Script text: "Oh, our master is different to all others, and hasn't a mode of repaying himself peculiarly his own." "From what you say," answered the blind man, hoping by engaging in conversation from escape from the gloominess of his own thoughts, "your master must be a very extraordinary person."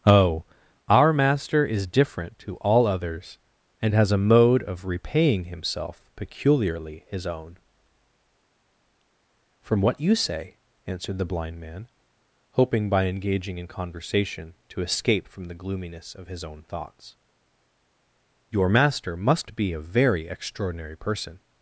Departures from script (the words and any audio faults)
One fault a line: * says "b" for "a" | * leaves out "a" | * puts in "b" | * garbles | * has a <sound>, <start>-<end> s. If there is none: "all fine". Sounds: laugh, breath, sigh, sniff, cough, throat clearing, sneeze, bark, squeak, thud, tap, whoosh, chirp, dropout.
* says "has" for "hasn't"
* says "to" for "from"